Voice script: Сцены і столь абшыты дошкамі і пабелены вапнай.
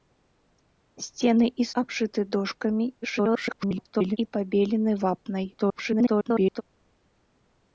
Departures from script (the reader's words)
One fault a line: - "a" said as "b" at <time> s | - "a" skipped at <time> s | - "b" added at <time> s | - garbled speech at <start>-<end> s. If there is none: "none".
- "столь" skipped at 1.7 s
- garbled speech at 3.0-4.2 s
- garbled speech at 5.5-6.6 s